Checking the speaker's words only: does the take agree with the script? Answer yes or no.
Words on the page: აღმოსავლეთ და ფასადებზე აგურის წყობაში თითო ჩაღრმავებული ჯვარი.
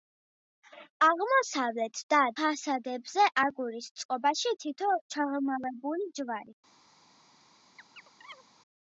yes